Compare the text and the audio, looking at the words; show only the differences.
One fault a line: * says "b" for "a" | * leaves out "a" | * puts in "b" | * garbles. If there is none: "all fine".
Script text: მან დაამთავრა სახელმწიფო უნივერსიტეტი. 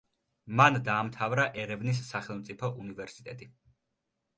* puts in "ერევნის"